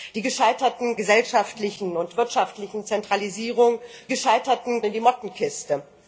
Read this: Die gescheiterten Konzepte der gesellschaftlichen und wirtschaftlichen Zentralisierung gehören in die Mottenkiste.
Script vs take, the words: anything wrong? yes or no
yes